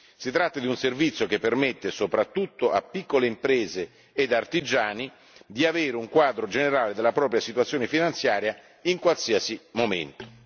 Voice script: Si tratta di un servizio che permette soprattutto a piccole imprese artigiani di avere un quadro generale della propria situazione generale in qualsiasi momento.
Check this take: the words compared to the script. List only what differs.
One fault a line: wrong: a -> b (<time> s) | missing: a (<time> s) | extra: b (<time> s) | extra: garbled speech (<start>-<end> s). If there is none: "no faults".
extra: ed (4.1 s)
wrong: generale -> finanziaria (7.9 s)